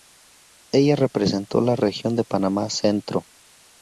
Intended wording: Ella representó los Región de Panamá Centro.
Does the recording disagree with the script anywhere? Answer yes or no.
yes